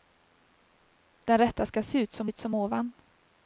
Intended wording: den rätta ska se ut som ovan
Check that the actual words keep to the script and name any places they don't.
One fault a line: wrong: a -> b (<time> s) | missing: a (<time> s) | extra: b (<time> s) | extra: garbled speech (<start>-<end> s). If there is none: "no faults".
extra: ut som (2.2 s)